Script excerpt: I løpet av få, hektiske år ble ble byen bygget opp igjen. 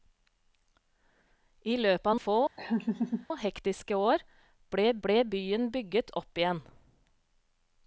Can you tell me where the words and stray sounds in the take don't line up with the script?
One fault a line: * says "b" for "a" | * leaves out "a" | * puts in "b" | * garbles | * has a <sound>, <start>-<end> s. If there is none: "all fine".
* has a laugh, 2.6-3.3 s